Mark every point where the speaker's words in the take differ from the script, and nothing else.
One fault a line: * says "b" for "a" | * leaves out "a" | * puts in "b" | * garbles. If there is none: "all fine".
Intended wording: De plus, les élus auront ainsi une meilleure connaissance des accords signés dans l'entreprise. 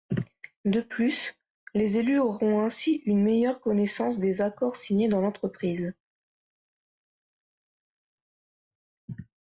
all fine